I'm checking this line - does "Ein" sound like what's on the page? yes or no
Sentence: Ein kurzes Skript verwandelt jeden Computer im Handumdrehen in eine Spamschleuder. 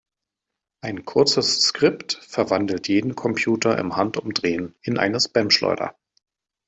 yes